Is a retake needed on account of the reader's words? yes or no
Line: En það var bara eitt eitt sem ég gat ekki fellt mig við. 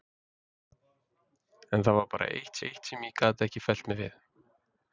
no